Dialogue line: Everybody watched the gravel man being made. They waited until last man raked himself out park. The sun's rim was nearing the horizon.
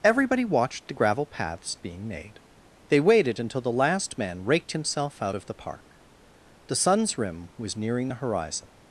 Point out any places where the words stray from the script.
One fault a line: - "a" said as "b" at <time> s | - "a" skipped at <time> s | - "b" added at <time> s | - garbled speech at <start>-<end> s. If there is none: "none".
- "man" said as "paths" at 1.3 s
- "the" added at 3.6 s
- "of the" added at 5.3 s